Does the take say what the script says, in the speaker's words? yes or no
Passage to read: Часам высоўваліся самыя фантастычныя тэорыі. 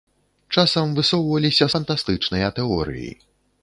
no